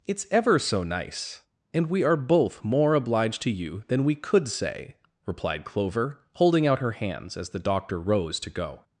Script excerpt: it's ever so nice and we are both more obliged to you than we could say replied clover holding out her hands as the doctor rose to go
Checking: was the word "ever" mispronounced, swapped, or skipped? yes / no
no